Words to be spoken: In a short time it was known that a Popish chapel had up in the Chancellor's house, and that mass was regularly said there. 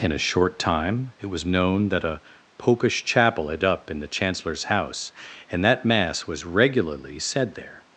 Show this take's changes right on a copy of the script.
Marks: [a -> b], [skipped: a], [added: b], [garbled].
In a short time it was known that a Popish chapel had up in the Chancellor's house, and that mass was regularly said there.